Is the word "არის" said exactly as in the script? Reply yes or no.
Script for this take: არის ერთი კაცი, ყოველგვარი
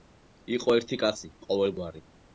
no